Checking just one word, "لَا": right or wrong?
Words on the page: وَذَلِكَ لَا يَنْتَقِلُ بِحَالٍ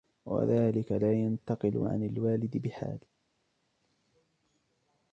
right